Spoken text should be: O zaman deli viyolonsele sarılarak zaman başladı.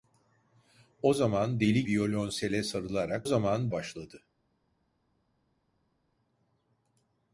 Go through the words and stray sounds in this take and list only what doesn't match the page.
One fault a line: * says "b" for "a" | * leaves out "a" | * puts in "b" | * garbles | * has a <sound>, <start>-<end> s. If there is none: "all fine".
all fine